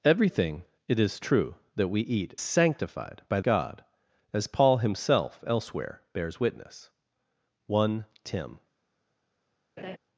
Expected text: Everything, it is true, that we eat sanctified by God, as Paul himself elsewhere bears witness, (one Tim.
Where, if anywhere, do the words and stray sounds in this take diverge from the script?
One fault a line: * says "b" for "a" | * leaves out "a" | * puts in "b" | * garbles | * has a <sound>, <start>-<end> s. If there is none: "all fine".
* has a laugh, 9.8-10.0 s